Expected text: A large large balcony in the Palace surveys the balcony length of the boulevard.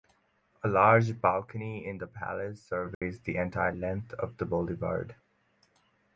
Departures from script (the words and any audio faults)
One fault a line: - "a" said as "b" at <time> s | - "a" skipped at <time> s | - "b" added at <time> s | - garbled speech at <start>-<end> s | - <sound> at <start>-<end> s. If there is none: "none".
- "large" skipped at 1.2 s
- dropout at 2.9-3.0 s
- "balcony" said as "entire" at 3.4 s